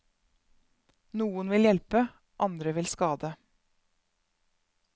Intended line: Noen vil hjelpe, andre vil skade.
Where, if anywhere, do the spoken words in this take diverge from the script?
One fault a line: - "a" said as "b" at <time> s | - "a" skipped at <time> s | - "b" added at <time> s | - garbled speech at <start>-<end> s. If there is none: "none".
none